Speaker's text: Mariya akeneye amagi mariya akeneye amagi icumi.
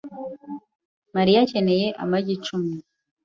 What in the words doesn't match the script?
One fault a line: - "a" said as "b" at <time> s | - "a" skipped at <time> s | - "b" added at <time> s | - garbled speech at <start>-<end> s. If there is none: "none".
- "mariya akeneye amagi" skipped at 2.3 s